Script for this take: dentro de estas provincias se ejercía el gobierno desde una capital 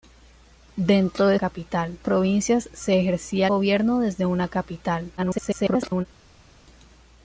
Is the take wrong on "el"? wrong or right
wrong